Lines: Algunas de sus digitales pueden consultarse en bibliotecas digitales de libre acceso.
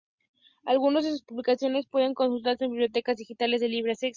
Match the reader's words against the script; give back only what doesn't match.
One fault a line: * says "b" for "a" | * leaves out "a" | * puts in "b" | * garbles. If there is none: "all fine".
* says "publicaciones" for "digitales"